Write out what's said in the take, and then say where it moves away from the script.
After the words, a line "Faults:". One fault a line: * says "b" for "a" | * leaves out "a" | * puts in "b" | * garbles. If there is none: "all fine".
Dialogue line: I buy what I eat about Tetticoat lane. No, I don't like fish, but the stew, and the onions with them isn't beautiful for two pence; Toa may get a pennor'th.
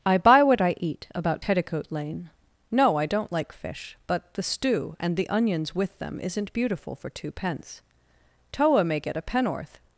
I buy what I eat about Tetticoat lane. No, I don't like fish, but the stew, and the onions with them isn't beautiful for two pence; Toa may get a pennor'th.
Faults:
all fine